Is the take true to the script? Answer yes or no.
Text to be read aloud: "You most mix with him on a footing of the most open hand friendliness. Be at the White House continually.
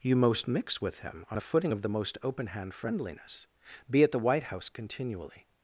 yes